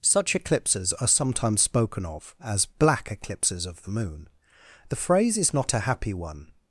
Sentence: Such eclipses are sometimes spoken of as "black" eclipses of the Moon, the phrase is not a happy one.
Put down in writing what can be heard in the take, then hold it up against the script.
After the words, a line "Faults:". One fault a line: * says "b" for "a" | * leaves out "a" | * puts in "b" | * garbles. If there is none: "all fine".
Such eclipses are sometimes spoken of as "black" eclipses of the Moon, the phrase is not a happy one.
Faults:
all fine